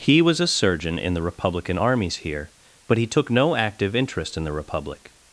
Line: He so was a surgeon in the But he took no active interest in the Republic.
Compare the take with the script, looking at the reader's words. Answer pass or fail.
fail